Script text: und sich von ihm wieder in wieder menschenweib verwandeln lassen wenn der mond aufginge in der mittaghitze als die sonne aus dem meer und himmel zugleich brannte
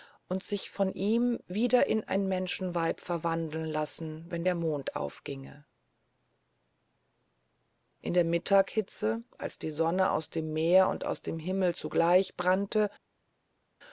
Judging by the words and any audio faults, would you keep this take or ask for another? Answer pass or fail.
fail